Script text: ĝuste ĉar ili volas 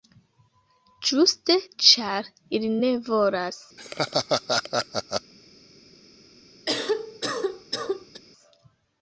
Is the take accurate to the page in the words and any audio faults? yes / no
no